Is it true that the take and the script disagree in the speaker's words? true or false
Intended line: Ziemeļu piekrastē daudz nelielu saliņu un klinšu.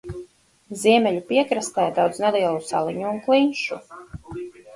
false